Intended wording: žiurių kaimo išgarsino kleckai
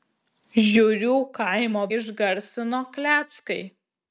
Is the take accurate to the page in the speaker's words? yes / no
yes